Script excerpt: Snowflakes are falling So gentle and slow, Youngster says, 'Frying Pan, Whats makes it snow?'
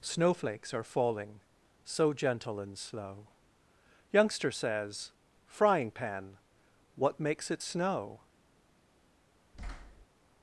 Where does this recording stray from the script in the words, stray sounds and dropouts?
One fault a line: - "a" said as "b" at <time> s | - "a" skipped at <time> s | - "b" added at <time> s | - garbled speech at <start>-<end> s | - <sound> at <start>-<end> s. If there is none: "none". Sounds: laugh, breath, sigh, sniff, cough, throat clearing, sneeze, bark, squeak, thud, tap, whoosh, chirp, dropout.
- "Whats" said as "What" at 7.0 s
- thud at 9.5-10.1 s